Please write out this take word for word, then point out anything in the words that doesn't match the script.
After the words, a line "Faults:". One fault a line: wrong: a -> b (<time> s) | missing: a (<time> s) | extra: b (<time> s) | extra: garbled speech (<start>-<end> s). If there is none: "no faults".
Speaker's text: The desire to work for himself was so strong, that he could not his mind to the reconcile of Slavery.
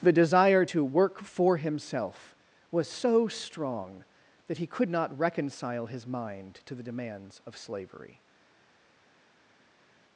The desire to work for himself was so strong, that he could not reconcile his mind to the demands of Slavery.
Faults:
extra: reconcile (5.2 s)
wrong: reconcile -> demands (6.8 s)